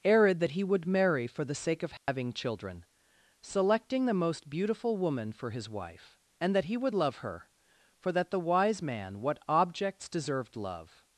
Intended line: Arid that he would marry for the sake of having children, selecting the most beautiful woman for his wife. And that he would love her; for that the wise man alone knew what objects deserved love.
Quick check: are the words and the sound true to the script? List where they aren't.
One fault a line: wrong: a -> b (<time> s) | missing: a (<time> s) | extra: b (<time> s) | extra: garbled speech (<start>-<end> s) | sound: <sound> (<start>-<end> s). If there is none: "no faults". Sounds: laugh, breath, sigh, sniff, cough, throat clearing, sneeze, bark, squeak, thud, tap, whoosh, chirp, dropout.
sound: dropout (2.0-2.1 s)
missing: alone knew (9.2 s)